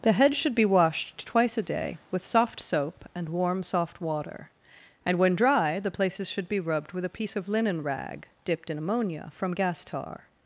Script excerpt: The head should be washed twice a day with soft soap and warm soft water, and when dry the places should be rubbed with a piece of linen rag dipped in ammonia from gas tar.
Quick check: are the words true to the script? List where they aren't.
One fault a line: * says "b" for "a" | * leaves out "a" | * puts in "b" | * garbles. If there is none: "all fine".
all fine